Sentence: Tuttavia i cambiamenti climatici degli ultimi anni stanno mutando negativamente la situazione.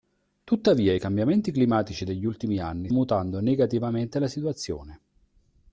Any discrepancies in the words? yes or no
yes